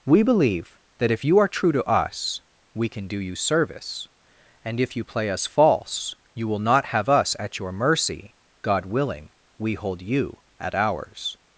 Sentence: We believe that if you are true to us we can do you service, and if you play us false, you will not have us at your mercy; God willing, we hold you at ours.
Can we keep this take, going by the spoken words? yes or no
yes